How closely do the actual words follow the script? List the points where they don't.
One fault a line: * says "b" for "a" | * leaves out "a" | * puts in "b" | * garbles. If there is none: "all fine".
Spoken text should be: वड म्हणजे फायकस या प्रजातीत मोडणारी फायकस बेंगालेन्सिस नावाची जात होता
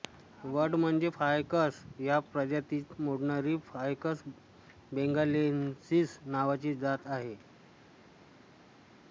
* says "आहे" for "होता"